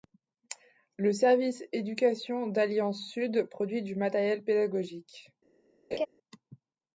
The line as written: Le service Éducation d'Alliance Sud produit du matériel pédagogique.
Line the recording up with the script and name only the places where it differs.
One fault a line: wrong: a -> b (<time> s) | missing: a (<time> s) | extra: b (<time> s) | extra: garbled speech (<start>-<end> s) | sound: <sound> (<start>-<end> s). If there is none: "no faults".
sound: laugh (5.9-6.1 s)